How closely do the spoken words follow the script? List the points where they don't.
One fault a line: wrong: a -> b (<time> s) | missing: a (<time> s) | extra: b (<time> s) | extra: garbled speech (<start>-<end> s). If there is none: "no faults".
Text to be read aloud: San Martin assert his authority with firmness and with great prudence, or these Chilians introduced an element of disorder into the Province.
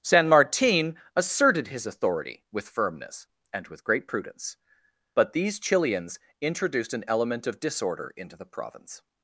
wrong: assert -> asserted (1.1 s)
wrong: or -> but (5.1 s)